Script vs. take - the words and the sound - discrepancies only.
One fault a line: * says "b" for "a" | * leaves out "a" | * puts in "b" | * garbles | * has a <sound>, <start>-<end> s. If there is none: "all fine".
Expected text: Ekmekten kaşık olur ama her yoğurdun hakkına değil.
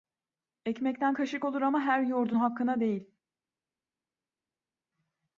all fine